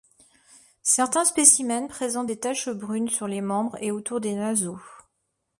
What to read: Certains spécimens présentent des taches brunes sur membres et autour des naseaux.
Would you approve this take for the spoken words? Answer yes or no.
no